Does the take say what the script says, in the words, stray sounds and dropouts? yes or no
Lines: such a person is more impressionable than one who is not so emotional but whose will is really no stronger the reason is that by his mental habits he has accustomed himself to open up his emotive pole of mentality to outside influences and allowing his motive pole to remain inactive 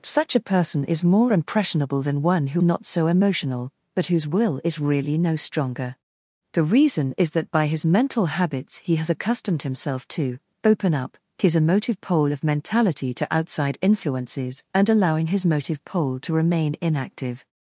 no